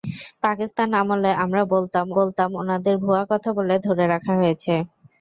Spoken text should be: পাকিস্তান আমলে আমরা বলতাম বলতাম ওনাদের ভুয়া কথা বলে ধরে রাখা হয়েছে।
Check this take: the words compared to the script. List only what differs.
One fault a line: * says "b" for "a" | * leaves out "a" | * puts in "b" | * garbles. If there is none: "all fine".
all fine